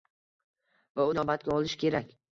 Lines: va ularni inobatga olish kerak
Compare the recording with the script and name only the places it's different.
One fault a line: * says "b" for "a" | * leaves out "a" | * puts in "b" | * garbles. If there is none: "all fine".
* leaves out "ularni"